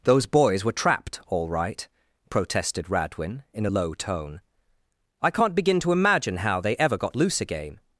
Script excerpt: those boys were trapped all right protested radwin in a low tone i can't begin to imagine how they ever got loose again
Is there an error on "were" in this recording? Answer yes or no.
no